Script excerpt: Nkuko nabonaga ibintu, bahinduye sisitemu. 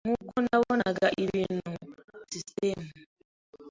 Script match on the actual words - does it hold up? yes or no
no